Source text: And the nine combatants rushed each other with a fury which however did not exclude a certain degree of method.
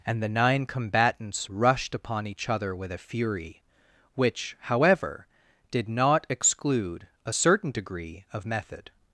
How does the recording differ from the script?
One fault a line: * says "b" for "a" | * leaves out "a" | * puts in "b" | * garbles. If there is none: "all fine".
* puts in "upon"